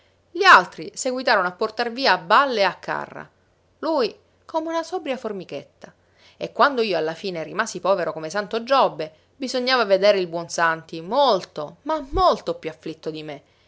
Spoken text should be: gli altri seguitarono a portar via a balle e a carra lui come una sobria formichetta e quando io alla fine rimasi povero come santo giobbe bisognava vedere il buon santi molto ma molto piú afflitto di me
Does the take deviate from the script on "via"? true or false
false